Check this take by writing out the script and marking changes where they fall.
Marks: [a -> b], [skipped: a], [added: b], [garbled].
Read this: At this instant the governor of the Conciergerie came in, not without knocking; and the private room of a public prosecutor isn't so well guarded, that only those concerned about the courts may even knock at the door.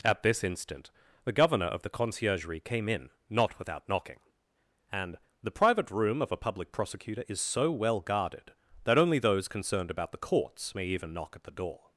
At this instant the governor of the Conciergerie came in, not without knocking; and the private room of a public prosecutor [isn't -> is] so well guarded, that only those concerned about the courts may even knock at the door.